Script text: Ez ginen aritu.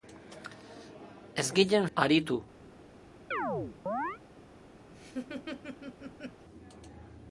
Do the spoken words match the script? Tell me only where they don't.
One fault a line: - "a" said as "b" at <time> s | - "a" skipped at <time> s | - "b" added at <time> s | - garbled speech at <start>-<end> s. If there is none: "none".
none